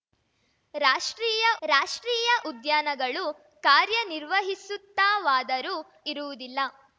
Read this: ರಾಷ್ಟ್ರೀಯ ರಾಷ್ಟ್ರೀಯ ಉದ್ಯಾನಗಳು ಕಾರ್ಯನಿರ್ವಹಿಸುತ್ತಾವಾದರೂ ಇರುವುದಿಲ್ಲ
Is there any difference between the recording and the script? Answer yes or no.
no